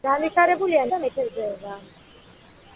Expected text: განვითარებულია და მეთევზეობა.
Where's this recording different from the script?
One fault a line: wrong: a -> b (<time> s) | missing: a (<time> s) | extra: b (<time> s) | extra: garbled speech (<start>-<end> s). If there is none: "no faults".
no faults